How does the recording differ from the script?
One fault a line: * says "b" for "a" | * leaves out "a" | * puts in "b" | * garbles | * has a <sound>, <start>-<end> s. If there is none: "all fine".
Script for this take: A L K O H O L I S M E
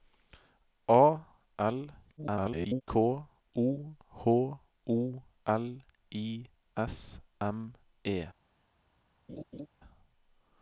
* garbles
* has a laugh, 9.3-9.7 s